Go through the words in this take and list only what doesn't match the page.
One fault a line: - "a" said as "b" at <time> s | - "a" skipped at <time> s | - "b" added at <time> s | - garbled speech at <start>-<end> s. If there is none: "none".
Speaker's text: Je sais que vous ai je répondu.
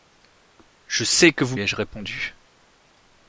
none